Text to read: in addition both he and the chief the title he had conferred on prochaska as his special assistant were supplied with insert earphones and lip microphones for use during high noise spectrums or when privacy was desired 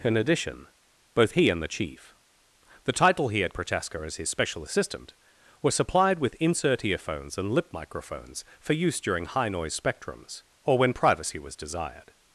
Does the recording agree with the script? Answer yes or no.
no